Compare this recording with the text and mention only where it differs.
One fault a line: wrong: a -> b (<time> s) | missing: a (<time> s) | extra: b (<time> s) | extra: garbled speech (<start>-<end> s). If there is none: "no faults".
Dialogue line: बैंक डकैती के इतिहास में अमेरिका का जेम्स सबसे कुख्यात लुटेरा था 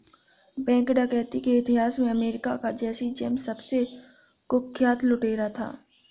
extra: जैसी (2.8 s)